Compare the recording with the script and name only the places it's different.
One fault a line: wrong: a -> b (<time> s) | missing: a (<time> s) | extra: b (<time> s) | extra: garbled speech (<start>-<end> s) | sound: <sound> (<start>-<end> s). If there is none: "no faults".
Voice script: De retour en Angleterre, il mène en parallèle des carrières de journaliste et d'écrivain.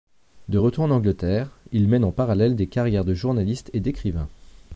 no faults